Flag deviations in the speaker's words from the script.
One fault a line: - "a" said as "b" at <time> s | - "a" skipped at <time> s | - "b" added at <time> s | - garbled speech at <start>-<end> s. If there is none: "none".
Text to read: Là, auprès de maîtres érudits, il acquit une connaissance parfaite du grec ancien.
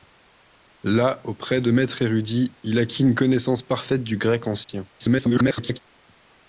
- garbled speech at 5.0-5.8 s